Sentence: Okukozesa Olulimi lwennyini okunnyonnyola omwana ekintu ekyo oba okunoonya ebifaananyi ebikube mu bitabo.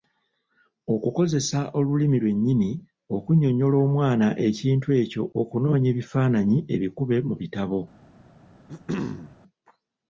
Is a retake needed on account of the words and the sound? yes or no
yes